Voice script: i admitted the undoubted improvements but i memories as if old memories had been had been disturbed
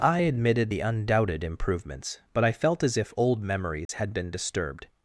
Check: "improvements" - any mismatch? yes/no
no